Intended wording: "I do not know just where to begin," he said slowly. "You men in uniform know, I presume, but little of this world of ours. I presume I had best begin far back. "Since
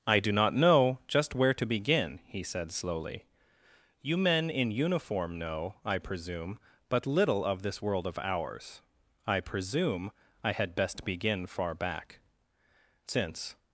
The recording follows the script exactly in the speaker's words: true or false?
true